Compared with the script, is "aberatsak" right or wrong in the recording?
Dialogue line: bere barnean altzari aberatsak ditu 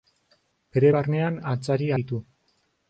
wrong